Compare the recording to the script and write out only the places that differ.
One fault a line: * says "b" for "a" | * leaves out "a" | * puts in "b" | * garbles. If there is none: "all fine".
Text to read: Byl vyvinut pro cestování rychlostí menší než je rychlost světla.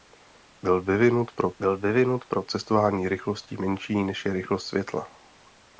* puts in "byl vyvinut pro"